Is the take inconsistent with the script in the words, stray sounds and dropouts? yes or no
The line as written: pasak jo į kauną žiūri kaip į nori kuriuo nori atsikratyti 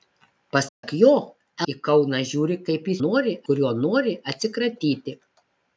yes